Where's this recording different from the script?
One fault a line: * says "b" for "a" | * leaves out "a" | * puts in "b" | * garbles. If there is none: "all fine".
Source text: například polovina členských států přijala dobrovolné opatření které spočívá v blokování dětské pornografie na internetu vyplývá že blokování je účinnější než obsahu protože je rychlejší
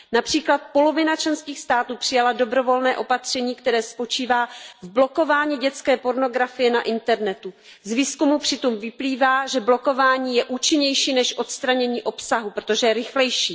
* puts in "z výzkumu přitom"
* puts in "odstranění"